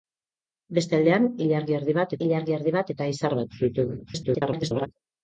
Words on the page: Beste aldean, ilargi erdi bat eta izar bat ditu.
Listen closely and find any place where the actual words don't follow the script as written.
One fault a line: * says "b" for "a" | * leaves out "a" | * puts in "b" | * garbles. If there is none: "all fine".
* puts in "ilargi erdi bat"
* garbles